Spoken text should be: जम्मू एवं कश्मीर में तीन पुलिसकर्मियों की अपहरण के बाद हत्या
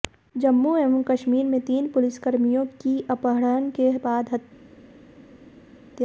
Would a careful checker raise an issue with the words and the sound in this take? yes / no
no